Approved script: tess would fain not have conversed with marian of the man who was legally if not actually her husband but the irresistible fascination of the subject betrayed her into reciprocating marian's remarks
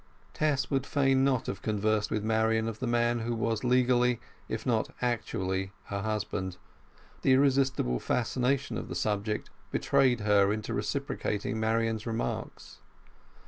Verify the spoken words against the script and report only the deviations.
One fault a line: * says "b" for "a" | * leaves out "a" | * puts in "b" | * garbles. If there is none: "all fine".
* leaves out "but"